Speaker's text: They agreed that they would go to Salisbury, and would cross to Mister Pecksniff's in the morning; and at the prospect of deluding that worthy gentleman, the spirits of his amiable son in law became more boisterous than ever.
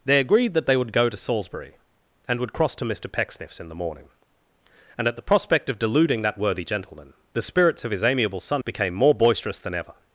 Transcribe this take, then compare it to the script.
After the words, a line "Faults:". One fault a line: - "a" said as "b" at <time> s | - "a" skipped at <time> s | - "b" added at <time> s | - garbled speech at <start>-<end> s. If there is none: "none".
They agreed that they would go to Salisbury, and would cross to Mister Pecksniff's in the morning; and at the prospect of deluding that worthy gentleman, the spirits of his amiable son became more boisterous than ever.
Faults:
- "in law" skipped at 8.6 s